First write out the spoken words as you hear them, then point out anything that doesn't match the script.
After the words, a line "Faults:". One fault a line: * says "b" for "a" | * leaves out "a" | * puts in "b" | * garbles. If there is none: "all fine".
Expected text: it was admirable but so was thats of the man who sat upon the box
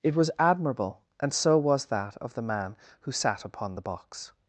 it was admirable and so was that of the man who sat upon the box
Faults:
* says "and" for "but"
* says "that" for "thats"